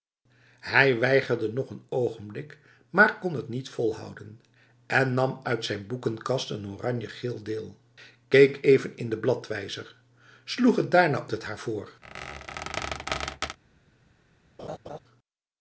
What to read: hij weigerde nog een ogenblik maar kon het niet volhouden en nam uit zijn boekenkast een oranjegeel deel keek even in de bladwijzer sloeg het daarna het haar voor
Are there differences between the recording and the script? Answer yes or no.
no